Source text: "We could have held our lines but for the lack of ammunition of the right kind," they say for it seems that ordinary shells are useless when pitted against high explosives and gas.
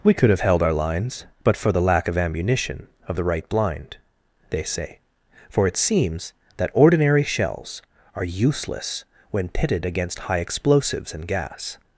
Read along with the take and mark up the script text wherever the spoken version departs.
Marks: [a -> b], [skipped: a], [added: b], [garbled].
"We could have held our lines but for the lack of ammunition of the right [kind," -> blind] they say for it seems that ordinary shells are useless when pitted against high explosives and gas.